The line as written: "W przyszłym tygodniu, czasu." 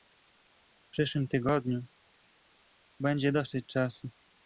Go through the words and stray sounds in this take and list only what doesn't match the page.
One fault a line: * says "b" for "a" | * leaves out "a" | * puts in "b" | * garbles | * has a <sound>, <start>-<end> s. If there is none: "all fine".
* puts in "będzie dosyć"